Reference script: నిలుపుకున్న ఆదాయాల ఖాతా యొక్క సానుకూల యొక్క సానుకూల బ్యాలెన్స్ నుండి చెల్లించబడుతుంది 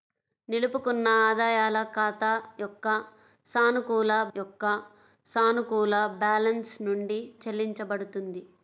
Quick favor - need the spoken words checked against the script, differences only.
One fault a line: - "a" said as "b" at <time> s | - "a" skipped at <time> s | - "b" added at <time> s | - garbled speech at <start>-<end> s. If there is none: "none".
none